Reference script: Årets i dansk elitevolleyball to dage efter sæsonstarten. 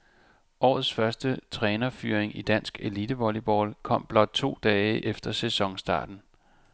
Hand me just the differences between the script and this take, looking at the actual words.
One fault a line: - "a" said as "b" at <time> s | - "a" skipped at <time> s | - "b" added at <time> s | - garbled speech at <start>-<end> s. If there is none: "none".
- "første trænerfyring" added at 0.9 s
- "kom blot" added at 3.8 s